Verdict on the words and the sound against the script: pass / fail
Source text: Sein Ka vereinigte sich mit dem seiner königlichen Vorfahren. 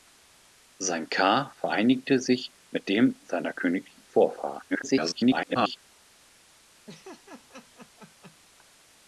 fail